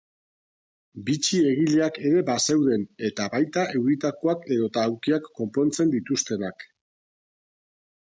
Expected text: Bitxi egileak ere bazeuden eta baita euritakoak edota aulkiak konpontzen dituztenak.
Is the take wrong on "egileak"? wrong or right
right